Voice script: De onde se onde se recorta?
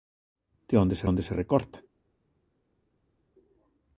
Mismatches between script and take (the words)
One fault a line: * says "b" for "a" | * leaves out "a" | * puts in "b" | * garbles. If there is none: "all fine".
all fine